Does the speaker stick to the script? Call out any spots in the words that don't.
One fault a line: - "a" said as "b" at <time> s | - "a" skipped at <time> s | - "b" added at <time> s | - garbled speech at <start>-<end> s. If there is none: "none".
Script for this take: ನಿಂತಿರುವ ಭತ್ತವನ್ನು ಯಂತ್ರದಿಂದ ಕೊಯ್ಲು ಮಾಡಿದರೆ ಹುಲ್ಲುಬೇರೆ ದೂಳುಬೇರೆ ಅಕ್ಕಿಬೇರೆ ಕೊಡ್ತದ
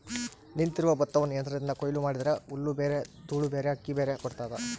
none